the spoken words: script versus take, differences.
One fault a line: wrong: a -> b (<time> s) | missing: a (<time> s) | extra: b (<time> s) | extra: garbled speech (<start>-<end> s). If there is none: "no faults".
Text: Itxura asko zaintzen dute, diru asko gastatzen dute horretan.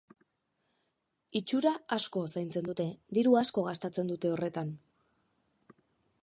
no faults